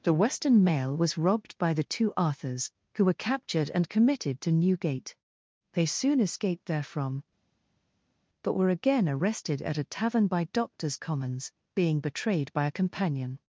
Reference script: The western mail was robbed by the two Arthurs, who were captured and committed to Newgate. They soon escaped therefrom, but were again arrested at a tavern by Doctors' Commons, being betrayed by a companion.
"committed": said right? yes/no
yes